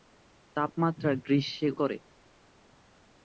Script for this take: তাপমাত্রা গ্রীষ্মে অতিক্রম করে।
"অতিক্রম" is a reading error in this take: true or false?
true